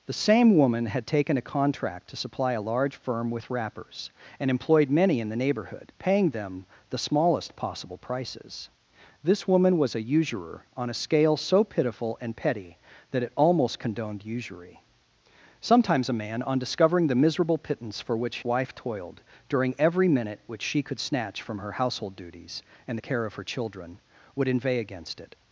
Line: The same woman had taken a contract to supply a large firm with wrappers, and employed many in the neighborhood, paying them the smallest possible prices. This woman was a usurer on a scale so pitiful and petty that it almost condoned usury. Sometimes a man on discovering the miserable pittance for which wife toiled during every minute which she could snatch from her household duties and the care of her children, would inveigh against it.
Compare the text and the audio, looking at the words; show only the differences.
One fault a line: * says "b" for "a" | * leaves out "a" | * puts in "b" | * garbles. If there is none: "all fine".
all fine